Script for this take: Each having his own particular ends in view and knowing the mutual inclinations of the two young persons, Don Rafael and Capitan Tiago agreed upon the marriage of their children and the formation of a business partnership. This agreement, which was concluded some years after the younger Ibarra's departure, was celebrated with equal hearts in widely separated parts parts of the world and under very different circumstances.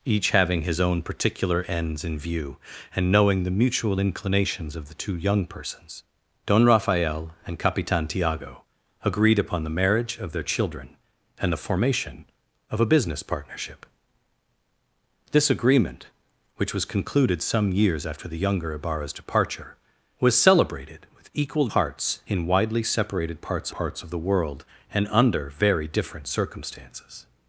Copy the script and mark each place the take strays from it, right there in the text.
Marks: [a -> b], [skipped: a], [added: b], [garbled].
Each having his own particular ends in view and knowing the mutual inclinations of the two young persons, Don Rafael and Capitan Tiago agreed upon the marriage of their children and the formation of a business partnership. This agreement, which was concluded some years after the younger Ibarra's departure, was celebrated with equal hearts in widely separated parts parts of the world and under very different circumstances.